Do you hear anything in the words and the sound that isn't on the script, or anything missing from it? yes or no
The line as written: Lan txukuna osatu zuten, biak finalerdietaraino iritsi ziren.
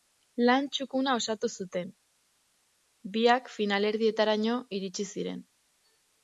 no